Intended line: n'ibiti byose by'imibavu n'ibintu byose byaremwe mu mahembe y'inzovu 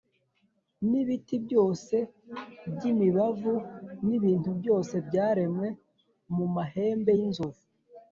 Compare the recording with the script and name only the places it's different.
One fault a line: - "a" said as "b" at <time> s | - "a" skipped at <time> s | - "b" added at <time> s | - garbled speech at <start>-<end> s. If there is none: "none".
none